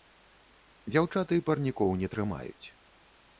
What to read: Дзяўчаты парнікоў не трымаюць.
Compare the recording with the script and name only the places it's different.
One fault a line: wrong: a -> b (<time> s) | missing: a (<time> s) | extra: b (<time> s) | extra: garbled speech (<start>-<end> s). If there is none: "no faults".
no faults